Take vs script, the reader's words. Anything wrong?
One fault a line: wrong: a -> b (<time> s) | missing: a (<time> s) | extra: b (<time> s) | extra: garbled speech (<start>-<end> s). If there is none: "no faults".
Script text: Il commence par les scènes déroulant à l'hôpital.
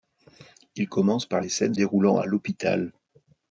no faults